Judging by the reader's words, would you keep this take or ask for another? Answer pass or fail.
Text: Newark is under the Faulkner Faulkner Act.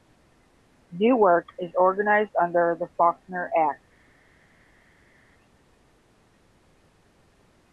fail